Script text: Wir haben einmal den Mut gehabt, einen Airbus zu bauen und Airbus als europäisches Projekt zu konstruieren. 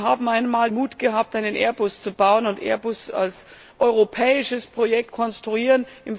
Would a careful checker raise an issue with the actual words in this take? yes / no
yes